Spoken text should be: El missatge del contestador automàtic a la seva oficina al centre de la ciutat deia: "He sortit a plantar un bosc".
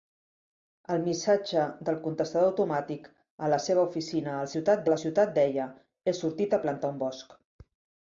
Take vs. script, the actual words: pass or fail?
fail